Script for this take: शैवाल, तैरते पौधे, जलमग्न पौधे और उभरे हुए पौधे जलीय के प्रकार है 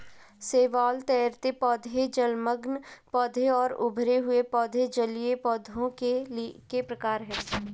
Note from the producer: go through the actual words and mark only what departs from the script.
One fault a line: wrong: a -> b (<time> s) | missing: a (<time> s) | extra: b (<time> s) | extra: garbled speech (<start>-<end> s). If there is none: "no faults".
extra: पौधों (5.4 s)